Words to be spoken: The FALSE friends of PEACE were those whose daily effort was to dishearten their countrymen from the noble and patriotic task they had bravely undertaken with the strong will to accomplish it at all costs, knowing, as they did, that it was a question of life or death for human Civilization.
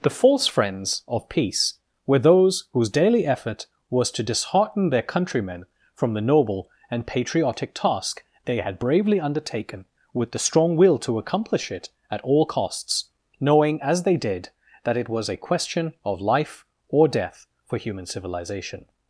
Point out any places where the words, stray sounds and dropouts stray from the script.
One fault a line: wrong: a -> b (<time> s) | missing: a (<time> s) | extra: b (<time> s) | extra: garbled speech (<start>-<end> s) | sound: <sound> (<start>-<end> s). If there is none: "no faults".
no faults